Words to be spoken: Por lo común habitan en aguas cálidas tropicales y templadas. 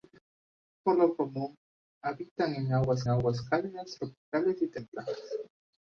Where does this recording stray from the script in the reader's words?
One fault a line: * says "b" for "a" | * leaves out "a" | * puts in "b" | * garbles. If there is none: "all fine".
* puts in "aguas"